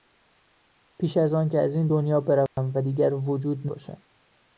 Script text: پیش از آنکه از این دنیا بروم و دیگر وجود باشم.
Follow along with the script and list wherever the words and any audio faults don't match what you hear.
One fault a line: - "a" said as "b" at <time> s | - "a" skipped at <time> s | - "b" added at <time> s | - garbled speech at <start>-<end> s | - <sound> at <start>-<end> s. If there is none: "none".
- dropout at 2.5-2.6 s